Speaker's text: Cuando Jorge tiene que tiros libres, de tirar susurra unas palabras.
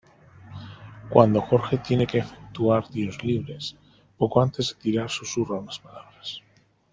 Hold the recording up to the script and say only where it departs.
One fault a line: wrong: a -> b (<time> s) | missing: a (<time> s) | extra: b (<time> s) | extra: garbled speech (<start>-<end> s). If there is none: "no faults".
extra: efectuar (2.2 s)
extra: poco antes (4.2 s)